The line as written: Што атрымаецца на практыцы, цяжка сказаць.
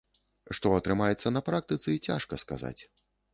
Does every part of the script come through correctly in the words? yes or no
yes